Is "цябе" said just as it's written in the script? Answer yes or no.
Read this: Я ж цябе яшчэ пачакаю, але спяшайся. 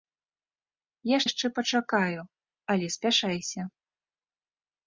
no